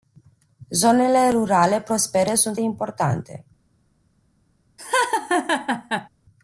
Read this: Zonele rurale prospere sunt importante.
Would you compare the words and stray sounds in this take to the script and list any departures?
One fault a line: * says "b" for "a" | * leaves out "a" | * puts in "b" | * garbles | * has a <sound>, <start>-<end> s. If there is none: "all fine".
* has a laugh, 4.8-6.1 s